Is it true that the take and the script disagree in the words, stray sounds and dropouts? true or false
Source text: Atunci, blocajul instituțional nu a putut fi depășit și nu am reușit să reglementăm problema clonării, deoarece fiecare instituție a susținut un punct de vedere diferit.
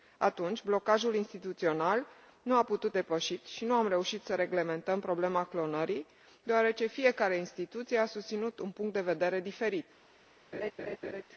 true